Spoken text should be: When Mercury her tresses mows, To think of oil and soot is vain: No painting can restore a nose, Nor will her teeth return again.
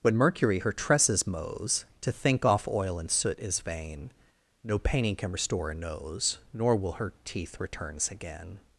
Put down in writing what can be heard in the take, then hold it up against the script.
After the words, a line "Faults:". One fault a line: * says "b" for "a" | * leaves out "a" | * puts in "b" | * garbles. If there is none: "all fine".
When Mercury her tresses mows, To think off oil and soot is vain: No painting can restore a nose, Nor will her teeth returns again.
Faults:
* says "off" for "of"
* says "returns" for "return"